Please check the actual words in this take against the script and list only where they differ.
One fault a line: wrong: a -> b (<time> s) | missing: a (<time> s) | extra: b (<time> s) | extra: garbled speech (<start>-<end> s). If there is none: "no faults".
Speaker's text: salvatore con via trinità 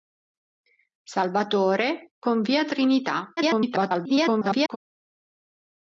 extra: garbled speech (3.4-4.8 s)